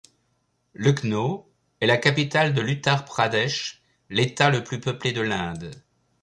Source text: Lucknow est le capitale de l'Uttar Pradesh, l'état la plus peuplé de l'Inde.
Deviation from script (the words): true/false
true